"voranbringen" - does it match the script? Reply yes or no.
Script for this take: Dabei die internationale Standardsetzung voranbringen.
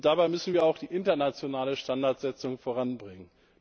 yes